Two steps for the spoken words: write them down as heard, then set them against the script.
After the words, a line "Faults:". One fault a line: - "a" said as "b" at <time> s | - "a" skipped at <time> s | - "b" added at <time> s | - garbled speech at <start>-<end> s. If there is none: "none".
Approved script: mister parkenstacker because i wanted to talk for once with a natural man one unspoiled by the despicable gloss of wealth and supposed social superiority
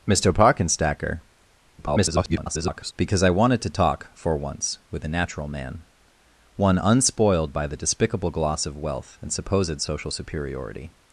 mister parkenstacker [garbled] because i wanted to talk for once with a natural man one unspoiled by the despicable gloss of wealth and supposed social superiority
Faults:
- garbled speech at 1.8-2.9 s